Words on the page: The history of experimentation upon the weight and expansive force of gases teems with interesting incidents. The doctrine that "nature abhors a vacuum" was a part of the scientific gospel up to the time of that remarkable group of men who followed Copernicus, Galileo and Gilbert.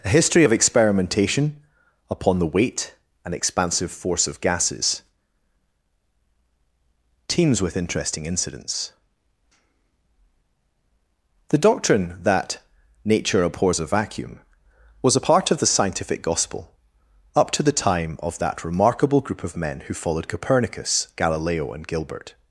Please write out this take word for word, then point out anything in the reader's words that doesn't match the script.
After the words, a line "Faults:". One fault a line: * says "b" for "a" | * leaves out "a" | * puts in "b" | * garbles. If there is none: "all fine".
A history of experimentation upon the weight and expansive force of gases teems with interesting incidents. The doctrine that "nature abhors a vacuum" was a part of the scientific gospel up to the time of that remarkable group of men who followed Copernicus, Galileo and Gilbert.
Faults:
* says "A" for "The"